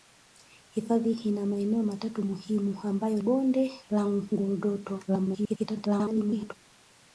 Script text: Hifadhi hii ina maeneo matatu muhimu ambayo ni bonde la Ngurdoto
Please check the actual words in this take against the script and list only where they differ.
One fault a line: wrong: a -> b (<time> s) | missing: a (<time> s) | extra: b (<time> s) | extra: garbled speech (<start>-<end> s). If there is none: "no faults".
missing: hii (1.1 s)
missing: ni (3.2 s)
extra: garbled speech (5.1-6.5 s)